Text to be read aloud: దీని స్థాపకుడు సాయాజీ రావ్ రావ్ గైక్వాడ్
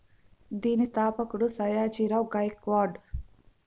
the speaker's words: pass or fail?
fail